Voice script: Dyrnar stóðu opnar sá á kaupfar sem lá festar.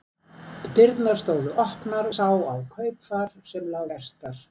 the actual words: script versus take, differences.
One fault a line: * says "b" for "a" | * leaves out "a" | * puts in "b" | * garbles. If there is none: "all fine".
all fine